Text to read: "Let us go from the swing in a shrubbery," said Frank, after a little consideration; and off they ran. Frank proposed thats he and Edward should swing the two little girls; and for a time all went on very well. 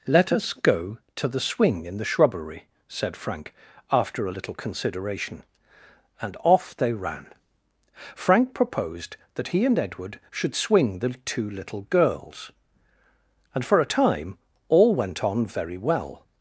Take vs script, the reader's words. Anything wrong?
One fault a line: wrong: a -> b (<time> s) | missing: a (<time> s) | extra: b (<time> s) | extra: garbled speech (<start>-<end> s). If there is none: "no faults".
wrong: from -> to (1.1 s)
wrong: a -> the (2.0 s)
wrong: thats -> that (9.3 s)